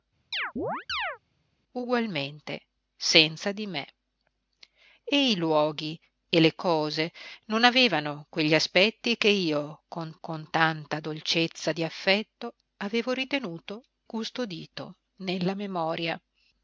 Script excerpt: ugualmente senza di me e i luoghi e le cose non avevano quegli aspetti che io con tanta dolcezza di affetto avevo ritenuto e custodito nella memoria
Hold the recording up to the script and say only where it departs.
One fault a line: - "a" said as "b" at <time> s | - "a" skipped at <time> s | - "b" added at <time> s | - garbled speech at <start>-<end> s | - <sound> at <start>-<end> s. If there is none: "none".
- chirp at 0.3-1.2 s
- "con" added at 10.2 s
- "e" skipped at 13.8 s